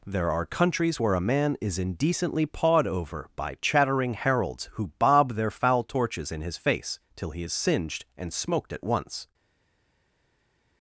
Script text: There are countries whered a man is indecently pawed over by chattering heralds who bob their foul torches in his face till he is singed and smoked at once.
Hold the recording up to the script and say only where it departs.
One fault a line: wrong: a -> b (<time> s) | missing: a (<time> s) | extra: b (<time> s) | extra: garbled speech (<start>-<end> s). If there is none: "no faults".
wrong: whered -> where (1.0 s)